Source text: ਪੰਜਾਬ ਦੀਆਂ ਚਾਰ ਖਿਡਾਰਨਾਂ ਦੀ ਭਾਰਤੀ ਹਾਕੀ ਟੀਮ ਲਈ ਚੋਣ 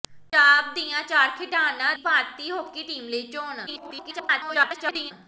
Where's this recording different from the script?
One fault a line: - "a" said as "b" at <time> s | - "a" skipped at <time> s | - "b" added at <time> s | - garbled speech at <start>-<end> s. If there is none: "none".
- "ਦੀ" skipped at 1.9 s
- garbled speech at 3.7-5.1 s